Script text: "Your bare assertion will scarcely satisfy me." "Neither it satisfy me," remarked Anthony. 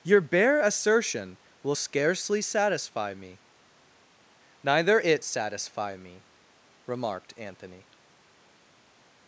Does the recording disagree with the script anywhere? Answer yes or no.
no